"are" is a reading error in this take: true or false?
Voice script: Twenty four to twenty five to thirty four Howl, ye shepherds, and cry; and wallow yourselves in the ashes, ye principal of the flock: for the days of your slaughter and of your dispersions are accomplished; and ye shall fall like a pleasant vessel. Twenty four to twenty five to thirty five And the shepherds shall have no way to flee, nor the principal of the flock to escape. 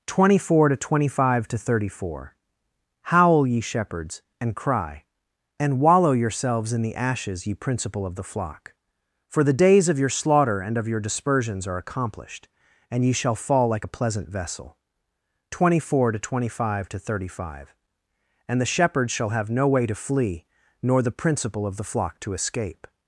false